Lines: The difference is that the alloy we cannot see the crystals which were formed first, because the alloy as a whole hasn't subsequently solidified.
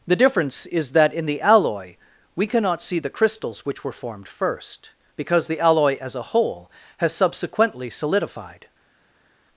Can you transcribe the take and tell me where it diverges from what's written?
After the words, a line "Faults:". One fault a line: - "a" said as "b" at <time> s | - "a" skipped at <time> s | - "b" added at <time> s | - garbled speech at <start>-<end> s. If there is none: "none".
The difference is that in the alloy we cannot see the crystals which were formed first, because the alloy as a whole has subsequently solidified.
Faults:
- "in" added at 1.1 s
- "hasn't" said as "has" at 7.0 s